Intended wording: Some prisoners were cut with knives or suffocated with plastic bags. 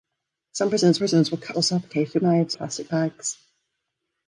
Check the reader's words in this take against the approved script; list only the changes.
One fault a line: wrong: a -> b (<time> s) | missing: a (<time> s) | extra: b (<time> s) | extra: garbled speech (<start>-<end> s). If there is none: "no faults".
extra: prisoners (1.0 s)
missing: with knives (1.6 s)
wrong: with -> knives (2.2 s)